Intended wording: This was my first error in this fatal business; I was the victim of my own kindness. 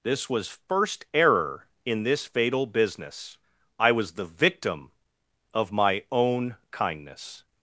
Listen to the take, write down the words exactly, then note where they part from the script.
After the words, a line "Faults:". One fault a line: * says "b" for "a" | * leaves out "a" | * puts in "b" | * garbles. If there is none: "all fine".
This was first error in this fatal business; I was the victim of my own kindness.
Faults:
* leaves out "my"